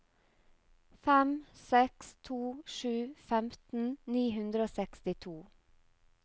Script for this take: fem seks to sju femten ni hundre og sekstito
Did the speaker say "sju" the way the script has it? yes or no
yes